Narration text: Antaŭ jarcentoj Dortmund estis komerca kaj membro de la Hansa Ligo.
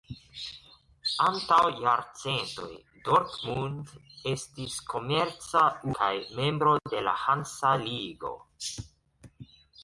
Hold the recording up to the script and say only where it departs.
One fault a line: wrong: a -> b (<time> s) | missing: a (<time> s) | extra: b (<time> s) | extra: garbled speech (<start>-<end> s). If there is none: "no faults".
no faults